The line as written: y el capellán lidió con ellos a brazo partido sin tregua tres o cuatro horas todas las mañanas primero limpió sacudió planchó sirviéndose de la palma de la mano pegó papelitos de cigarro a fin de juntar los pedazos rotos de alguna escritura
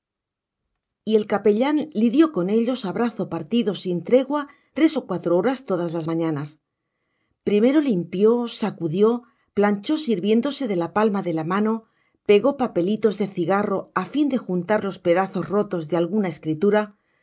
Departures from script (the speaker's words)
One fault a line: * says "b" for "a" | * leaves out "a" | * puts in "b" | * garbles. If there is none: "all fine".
all fine